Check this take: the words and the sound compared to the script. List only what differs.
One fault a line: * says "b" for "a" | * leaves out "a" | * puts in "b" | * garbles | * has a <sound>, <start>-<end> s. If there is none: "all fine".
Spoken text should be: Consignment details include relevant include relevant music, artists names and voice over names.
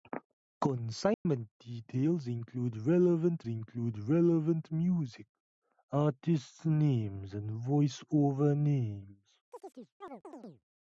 * has a dropout, 1.1-1.3 s
* has a chirp, 9.5-10.6 s